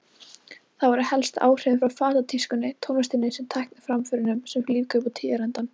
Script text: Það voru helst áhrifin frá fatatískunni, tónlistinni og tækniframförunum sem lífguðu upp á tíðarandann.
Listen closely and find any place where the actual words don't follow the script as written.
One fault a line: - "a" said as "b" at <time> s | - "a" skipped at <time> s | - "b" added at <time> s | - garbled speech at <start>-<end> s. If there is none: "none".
none